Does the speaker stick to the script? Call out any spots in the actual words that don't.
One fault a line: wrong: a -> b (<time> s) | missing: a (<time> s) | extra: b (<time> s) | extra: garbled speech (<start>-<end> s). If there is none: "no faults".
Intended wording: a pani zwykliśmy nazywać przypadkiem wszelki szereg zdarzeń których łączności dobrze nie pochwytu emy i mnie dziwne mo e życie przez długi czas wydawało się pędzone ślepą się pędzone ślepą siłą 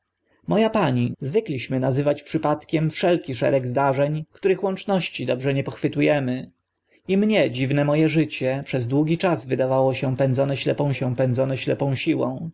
no faults